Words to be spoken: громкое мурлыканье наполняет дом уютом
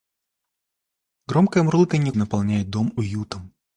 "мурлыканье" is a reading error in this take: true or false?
false